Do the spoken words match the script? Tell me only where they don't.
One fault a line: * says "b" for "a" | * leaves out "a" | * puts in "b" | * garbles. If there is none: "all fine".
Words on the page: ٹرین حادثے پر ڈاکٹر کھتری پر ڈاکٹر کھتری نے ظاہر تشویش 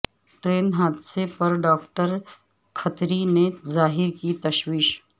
* leaves out "پر ڈاکٹر کھتری"
* puts in "کی"